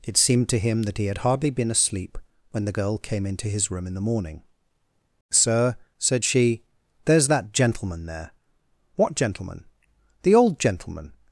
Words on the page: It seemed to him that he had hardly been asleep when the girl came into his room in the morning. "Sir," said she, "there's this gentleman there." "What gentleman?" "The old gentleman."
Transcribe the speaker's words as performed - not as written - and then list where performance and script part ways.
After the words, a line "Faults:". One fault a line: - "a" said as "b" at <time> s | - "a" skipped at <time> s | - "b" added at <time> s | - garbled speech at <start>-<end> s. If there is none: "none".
It seemed to him that he had hardly been asleep when the girl came into his room in the morning. "Sir," said she, "there's that gentleman there." "What gentleman?" "The old gentleman."
Faults:
- "this" said as "that" at 7.3 s